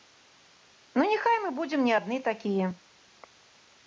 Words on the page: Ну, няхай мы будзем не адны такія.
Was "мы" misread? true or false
false